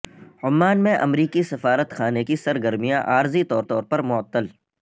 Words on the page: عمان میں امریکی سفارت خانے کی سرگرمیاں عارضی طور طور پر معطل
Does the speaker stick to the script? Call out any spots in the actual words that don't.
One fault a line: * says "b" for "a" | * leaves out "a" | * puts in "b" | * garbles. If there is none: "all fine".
all fine